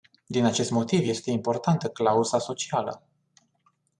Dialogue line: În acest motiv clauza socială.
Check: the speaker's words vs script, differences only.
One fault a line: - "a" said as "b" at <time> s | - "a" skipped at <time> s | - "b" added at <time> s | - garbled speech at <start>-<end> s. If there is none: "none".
- "În" said as "Din" at 0.2 s
- "este importantă" added at 1.1 s